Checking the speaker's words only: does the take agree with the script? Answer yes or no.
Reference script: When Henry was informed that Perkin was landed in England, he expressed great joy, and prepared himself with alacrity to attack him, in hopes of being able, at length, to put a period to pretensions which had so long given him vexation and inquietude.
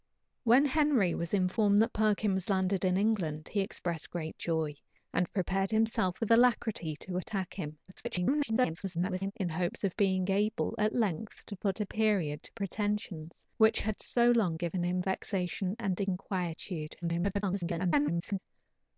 no